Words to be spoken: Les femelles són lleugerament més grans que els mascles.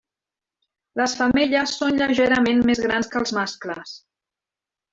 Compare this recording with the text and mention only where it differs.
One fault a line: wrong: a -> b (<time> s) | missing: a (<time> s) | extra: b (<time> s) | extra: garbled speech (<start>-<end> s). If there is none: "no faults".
no faults